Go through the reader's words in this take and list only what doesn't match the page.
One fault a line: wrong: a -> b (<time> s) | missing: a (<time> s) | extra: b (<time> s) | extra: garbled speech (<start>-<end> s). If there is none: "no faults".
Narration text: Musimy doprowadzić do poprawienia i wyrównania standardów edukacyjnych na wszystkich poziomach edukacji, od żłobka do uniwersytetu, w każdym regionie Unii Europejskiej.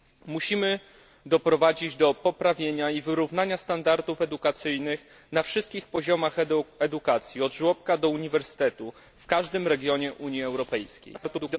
extra: garbled speech (11.1-11.6 s)